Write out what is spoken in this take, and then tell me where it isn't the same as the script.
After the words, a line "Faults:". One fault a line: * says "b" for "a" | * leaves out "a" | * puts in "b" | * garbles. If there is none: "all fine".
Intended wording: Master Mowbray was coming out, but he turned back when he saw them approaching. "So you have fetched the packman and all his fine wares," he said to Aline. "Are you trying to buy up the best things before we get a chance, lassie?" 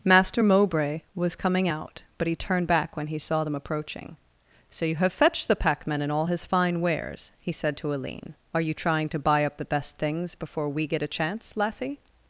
Master Mowbray was coming out, but he turned back when he saw them approaching. "So you have fetched the packman and all his fine wares," he said to Aline. "Are you trying to buy up the best things before we get a chance, lassie?"
Faults:
all fine